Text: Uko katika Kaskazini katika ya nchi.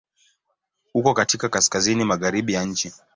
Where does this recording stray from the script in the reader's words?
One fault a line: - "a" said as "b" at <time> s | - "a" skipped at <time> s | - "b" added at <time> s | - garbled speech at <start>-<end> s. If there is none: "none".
- "katika" said as "magharibi" at 2.0 s